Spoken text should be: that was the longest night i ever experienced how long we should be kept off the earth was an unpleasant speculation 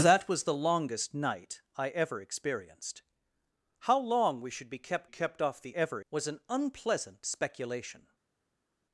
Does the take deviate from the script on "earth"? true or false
true